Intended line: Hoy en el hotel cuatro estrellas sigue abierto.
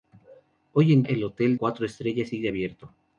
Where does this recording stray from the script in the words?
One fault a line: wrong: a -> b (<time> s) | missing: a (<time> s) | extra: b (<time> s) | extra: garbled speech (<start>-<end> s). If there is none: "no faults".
no faults